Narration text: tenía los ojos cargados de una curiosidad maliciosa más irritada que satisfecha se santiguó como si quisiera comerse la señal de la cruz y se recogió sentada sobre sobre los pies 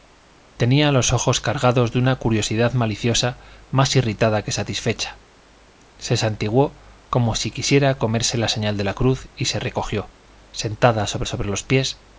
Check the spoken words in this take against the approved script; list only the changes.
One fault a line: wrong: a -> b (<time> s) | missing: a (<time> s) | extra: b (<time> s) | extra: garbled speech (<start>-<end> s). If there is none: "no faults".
no faults